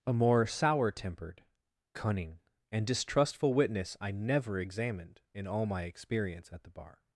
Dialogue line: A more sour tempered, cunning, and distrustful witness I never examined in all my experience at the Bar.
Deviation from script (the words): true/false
false